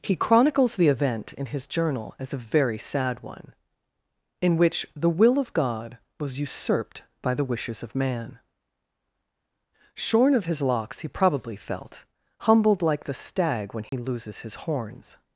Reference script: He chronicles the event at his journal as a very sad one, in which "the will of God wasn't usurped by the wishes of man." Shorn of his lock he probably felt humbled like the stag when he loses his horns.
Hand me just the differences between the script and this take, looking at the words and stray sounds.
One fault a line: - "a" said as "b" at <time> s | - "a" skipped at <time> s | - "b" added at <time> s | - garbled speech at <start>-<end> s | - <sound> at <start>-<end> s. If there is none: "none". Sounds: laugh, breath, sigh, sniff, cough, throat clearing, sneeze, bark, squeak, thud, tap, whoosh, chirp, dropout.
- "at" said as "in" at 1.3 s
- "wasn't" said as "was" at 6.2 s
- "lock" said as "locks" at 10.6 s
- dropout at 13.9-13.9 s